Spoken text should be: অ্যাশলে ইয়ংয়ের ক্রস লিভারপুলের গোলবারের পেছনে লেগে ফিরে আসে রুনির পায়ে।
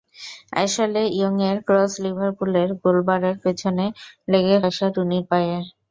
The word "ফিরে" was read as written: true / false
false